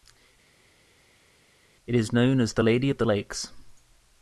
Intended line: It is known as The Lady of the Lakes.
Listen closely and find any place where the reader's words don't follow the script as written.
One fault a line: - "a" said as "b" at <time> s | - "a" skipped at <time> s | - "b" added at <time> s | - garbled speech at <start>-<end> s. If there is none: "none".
none